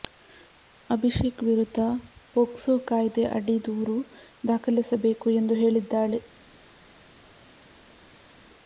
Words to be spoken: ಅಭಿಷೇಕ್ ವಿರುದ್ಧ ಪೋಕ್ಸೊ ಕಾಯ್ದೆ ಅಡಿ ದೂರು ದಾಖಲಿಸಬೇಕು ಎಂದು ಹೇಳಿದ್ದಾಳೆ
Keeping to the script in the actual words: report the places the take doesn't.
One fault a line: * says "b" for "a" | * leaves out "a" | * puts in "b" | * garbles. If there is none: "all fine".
all fine